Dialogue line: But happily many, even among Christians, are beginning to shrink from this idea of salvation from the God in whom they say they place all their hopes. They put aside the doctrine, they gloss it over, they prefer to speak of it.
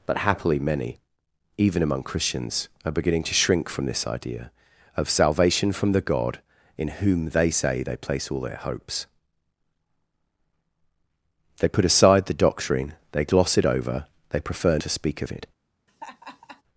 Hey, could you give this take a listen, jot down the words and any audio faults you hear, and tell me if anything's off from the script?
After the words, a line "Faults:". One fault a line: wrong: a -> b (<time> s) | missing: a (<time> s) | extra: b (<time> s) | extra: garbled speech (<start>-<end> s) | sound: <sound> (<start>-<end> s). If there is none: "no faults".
But happily many, even among Christians, are beginning to shrink from this idea of salvation from the God in whom they say they place all their hopes. They put aside the doctrine, they gloss it over, they prefer to speak of it.
Faults:
sound: laugh (15.9-16.6 s)